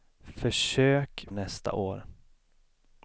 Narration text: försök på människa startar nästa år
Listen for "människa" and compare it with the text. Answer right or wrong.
wrong